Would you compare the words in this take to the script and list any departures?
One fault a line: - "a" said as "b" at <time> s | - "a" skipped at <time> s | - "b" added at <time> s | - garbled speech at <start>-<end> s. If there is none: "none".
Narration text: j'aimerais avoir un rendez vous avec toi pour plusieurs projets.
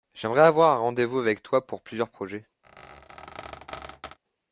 none